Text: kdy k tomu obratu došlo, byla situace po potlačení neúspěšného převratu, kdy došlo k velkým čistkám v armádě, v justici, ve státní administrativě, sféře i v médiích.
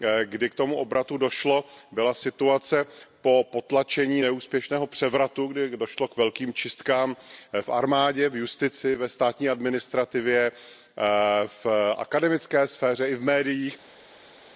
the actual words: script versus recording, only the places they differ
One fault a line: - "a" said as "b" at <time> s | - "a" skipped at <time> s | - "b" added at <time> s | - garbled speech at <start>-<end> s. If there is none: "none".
- "v akademické" added at 11.5 s